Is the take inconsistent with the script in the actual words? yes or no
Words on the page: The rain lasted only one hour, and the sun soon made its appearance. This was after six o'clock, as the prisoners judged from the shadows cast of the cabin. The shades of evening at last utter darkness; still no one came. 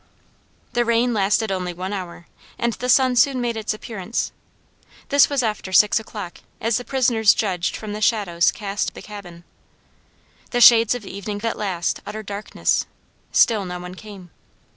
no